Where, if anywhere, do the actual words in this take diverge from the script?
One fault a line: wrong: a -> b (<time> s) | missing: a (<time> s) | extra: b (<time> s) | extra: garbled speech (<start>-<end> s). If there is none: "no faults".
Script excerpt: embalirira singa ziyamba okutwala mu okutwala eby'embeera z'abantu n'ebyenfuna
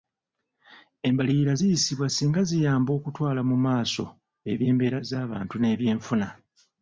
extra: ziyisibwa (1.6 s)
wrong: okutwala -> maaso (3.7 s)